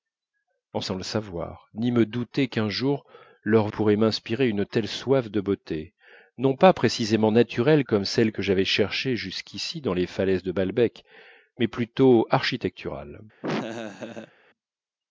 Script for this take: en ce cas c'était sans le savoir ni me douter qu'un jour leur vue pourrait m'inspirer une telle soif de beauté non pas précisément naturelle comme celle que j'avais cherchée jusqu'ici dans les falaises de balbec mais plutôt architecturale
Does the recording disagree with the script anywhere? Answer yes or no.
yes